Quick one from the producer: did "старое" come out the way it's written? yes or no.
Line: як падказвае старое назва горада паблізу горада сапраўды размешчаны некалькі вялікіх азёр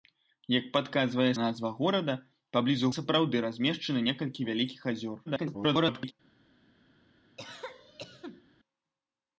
no